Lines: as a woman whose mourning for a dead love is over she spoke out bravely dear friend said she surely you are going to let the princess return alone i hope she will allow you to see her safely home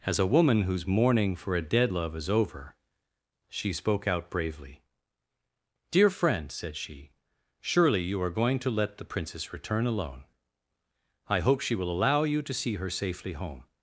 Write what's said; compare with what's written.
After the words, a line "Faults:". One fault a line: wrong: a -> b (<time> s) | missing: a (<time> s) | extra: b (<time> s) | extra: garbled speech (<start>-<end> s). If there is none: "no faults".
as a woman whose mourning for a dead love is over she spoke out bravely dear friend said she surely you are going to let the princess return alone i hope she will allow you to see her safely home
Faults:
no faults